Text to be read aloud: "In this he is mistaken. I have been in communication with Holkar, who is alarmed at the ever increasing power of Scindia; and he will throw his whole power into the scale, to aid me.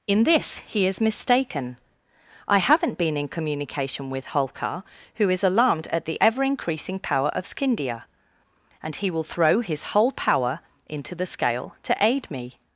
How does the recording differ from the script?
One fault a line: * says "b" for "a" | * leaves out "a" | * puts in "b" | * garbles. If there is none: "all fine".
* says "haven't" for "have"